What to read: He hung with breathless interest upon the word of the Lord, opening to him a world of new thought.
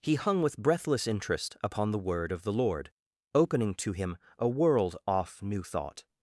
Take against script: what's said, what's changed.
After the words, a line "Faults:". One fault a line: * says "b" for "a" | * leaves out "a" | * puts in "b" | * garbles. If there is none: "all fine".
He hung with breathless interest upon the word of the Lord, opening to him a world off new thought.
Faults:
* says "off" for "of"